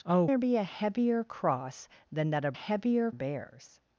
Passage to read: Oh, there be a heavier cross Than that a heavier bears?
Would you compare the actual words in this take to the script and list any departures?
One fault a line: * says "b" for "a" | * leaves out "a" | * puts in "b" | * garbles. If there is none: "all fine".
all fine